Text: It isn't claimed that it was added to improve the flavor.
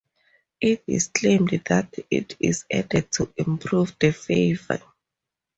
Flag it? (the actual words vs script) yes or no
yes